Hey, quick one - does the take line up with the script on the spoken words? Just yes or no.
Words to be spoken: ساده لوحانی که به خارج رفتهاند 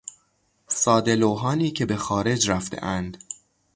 yes